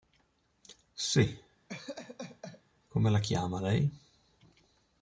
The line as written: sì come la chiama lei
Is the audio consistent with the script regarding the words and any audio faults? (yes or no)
no